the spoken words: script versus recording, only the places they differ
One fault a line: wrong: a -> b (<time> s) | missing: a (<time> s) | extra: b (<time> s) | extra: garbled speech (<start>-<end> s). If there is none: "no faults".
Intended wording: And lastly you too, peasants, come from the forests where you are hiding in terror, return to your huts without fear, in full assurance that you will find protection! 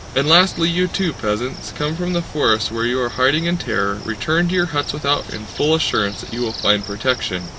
missing: fear (5.3 s)